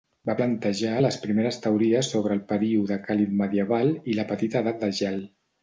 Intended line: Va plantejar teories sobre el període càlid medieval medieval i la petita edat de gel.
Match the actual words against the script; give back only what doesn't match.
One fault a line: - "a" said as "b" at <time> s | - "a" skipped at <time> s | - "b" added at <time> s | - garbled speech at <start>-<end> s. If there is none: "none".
- "les primeres" added at 1.0 s
- "medieval" skipped at 4.0 s